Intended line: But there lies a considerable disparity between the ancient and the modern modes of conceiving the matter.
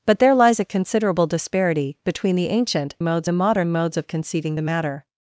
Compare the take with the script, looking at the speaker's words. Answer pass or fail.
fail